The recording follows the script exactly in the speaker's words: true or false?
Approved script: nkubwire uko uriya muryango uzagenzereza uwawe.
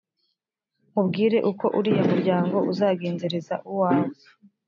true